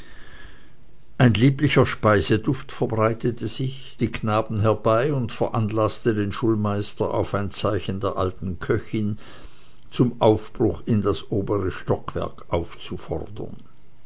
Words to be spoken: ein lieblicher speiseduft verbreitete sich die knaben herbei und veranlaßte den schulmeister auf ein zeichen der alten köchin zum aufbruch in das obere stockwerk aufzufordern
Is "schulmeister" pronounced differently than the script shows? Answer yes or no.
no